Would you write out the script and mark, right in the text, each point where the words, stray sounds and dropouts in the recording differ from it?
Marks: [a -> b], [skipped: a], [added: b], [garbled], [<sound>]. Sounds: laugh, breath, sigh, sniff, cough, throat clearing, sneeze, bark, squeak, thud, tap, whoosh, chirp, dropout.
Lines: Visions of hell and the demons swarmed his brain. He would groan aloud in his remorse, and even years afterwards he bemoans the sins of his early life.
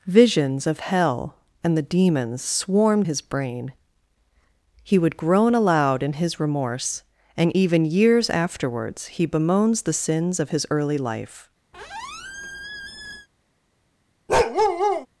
Visions of hell and the demons swarmed his brain. He would groan aloud in his remorse, and even years afterwards he bemoans the sins of his early life. [squeak] [bark]